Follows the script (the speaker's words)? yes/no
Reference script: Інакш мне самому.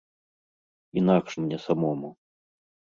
yes